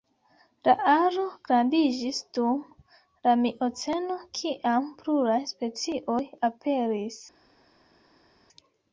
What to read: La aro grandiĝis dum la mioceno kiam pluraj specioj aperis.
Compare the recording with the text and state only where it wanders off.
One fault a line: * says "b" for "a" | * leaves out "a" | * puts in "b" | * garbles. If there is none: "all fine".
all fine